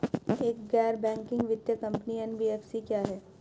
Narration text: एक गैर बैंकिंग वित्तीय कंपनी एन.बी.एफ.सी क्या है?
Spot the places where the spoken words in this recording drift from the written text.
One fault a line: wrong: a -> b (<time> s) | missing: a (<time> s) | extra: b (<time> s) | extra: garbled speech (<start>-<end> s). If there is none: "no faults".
no faults